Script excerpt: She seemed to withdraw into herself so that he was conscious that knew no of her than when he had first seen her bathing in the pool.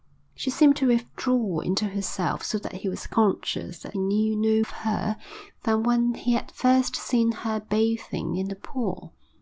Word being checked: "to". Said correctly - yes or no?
yes